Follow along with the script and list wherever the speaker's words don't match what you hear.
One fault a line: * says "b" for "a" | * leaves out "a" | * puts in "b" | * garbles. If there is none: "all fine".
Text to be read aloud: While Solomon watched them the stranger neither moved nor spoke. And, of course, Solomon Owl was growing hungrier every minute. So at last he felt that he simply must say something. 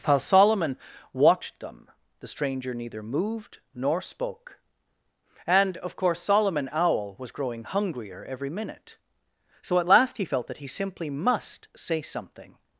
all fine